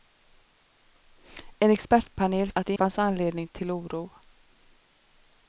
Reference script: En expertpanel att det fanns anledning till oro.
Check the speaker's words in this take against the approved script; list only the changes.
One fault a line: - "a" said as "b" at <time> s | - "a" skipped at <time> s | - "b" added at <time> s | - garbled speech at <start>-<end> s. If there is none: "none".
none